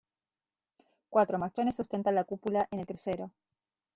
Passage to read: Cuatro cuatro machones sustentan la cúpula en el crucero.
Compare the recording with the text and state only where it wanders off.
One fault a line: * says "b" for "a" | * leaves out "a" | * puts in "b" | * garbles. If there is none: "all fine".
* leaves out "cuatro"